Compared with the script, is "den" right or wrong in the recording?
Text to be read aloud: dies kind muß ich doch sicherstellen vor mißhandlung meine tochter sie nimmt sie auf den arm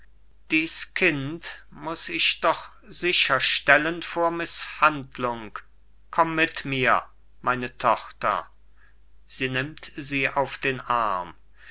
right